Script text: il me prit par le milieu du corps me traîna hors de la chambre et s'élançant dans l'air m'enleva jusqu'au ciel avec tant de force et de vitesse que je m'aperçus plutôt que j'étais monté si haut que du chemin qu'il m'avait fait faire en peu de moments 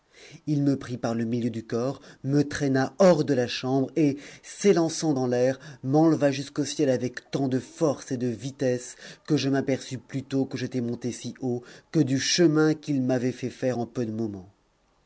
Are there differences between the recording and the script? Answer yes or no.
no